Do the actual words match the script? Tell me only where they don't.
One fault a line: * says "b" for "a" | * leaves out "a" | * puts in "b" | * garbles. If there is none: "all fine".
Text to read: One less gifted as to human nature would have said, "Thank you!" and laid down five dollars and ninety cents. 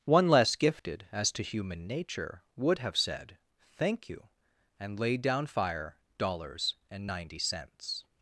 * says "fire" for "five"